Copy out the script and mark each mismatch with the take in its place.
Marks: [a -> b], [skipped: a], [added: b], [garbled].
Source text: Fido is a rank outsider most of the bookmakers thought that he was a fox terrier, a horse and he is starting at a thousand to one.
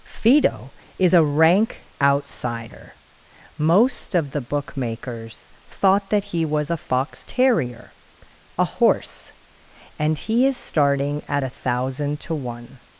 Fido is a rank outsider most of the bookmakers thought that he was a fox terrier, a horse and he is starting at a thousand to one.